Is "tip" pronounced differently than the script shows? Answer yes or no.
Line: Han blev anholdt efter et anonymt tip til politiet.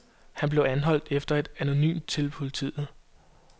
yes